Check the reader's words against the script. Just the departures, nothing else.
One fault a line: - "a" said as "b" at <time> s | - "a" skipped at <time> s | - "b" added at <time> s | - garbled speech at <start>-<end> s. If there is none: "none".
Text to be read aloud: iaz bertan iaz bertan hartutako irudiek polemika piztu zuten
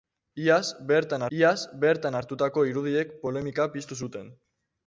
none